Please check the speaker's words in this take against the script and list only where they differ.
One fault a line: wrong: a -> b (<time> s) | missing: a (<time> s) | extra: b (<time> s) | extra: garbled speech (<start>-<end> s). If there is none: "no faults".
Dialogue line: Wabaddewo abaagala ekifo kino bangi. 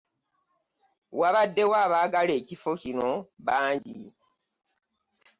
no faults